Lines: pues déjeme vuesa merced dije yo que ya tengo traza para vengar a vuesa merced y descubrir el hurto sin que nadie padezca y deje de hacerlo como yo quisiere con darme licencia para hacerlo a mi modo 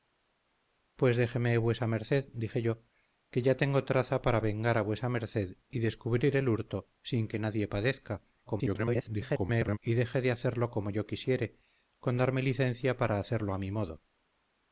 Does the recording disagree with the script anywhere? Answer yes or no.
yes